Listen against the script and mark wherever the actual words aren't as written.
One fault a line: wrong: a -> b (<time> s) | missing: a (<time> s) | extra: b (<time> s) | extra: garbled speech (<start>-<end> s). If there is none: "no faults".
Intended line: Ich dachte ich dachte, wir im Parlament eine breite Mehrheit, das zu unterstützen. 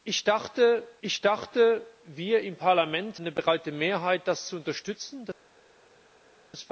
no faults